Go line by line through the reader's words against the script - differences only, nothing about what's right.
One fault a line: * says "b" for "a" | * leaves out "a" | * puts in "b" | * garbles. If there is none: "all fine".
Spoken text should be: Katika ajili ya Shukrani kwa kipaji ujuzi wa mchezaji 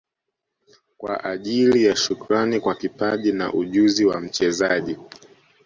* says "Kwa" for "Katika"
* puts in "na"